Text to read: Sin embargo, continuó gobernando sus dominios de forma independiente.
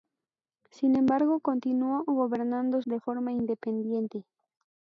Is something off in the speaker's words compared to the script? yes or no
yes